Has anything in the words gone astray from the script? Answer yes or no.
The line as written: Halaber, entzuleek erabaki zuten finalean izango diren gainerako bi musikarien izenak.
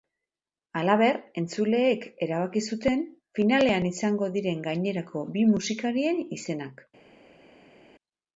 no